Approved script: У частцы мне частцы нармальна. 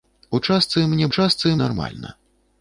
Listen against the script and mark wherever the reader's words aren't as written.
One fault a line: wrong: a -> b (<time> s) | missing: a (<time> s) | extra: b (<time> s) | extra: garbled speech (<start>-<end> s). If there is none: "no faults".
no faults